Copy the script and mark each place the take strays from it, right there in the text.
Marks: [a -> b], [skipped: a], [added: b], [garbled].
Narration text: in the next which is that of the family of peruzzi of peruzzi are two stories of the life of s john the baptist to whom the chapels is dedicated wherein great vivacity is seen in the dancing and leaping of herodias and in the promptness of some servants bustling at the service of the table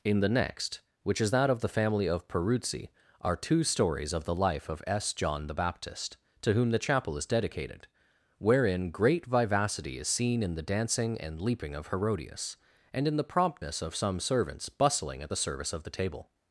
in the next which is that of the family of peruzzi [skipped: of peruzzi] are two stories of the life of s john the baptist to whom the [chapels -> chapel] is dedicated wherein great vivacity is seen in the dancing and leaping of herodias and in the promptness of some servants bustling at the service of the table